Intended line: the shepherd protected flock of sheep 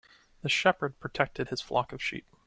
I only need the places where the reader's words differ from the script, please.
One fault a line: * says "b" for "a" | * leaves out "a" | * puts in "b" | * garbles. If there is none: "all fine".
* puts in "his"